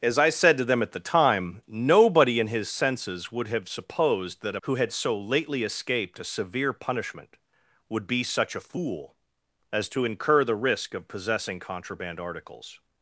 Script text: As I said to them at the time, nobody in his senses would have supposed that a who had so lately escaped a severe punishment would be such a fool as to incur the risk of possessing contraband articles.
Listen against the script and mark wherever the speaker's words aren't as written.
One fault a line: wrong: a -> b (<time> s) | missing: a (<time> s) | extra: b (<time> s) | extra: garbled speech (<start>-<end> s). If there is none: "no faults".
no faults